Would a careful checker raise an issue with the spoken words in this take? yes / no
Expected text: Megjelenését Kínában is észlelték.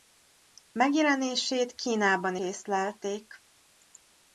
yes